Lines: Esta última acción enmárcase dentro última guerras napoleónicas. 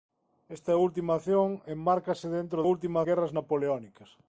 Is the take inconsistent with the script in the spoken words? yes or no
no